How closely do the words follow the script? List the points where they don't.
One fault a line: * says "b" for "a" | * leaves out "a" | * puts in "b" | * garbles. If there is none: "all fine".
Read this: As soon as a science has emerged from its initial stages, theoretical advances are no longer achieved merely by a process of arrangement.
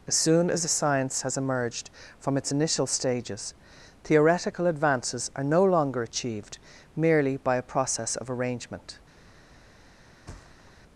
all fine